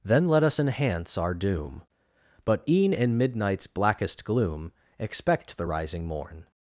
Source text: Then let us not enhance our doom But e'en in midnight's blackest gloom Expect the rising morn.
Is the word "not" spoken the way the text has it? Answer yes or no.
no